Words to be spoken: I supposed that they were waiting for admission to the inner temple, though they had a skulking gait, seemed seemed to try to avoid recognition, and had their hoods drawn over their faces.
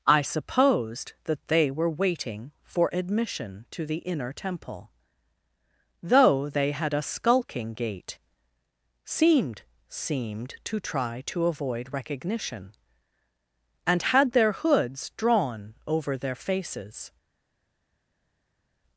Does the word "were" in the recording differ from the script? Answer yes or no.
no